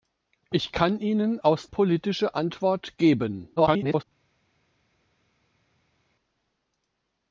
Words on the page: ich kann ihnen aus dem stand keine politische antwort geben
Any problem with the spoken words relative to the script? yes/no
yes